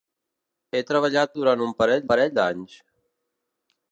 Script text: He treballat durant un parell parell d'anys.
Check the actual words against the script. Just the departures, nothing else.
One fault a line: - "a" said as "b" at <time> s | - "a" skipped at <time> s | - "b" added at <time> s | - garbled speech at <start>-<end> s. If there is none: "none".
none